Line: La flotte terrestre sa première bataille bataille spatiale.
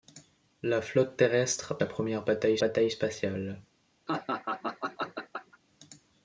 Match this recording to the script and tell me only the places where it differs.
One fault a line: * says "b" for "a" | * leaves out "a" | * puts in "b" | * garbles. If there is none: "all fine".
all fine